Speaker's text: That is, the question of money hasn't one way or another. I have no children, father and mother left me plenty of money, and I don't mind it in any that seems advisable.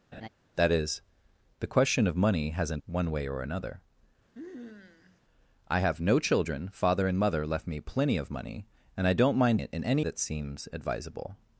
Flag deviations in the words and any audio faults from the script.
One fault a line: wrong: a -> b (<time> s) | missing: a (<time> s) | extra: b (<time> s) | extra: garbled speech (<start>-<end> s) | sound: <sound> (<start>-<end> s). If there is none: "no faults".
sound: laugh (0.1-0.3 s)
sound: sniff (4.3-5.2 s)